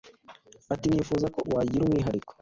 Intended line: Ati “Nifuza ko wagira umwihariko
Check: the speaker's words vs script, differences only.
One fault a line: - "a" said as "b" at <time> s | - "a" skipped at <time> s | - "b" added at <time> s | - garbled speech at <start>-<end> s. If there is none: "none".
none